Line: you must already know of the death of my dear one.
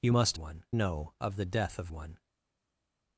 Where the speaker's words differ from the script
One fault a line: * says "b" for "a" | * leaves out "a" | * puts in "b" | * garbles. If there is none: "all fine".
* says "one" for "already"
* leaves out "my dear"